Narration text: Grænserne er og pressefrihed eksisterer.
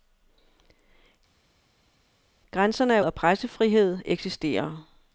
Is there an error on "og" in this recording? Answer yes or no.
no